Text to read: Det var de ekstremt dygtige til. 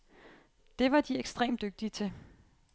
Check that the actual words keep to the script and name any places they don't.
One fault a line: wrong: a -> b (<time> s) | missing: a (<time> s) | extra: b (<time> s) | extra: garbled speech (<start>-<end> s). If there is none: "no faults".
no faults